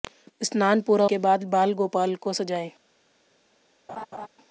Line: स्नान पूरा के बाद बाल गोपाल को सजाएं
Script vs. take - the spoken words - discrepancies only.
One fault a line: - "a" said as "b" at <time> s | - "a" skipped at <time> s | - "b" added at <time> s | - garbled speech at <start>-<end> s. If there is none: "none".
none